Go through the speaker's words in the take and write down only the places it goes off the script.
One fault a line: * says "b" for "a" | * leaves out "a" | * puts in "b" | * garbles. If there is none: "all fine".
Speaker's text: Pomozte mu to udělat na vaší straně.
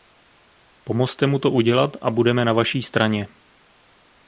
* puts in "a budeme"